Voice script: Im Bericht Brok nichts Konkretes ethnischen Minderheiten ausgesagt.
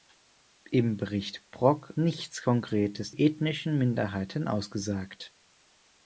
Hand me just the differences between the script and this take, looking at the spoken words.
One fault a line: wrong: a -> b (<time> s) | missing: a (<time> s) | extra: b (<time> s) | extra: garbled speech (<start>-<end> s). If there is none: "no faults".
no faults